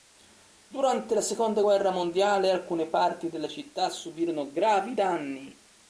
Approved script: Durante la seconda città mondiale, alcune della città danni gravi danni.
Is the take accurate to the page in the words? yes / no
no